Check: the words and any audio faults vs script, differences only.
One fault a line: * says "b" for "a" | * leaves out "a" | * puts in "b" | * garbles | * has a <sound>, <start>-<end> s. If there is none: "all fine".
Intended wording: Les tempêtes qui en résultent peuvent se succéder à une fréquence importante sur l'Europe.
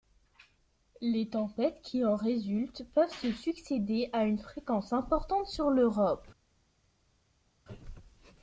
all fine